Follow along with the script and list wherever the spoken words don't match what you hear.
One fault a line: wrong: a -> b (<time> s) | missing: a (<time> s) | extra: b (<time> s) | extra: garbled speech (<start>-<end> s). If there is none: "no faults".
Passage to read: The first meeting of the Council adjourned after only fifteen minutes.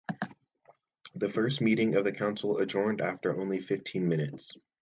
no faults